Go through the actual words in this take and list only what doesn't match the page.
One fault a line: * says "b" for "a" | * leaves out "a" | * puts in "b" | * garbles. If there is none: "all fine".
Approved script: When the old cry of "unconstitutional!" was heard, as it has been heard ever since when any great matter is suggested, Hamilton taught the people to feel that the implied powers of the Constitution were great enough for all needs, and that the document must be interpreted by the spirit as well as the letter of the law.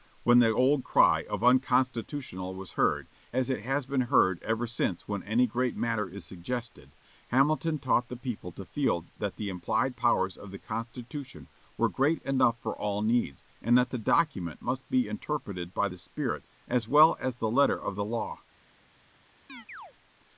all fine